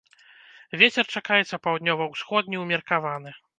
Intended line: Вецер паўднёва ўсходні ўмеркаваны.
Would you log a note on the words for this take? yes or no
yes